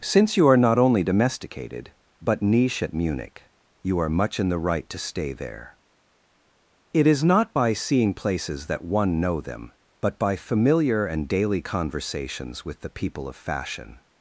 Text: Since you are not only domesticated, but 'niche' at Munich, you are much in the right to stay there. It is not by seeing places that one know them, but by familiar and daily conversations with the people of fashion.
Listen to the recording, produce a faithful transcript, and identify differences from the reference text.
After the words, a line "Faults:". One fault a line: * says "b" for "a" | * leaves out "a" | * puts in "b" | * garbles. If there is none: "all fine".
Since you are not only domesticated, but 'niche' at Munich, you are much in the right to stay there. It is not by seeing places that one know them, but by familiar and daily conversations with the people of fashion.
Faults:
all fine